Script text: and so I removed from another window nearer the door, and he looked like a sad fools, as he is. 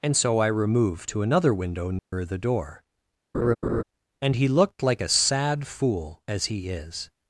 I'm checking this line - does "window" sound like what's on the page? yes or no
yes